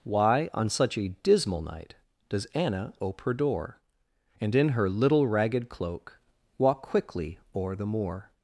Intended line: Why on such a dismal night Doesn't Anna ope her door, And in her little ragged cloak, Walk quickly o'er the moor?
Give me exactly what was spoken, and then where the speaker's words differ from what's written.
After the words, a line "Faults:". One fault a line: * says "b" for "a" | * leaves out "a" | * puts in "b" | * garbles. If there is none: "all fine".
Why on such a dismal night Does Anna ope her door, And in her little ragged cloak, Walk quickly o'er the moor?
Faults:
* says "Does" for "Doesn't"